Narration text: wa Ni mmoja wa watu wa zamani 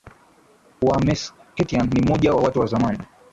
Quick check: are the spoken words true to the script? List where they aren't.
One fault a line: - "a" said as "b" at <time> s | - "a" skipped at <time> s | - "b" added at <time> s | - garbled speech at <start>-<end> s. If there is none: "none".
- "Meskhetian" added at 1.0 s